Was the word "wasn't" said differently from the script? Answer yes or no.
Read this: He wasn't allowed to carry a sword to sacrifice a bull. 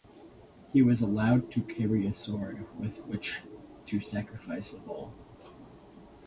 yes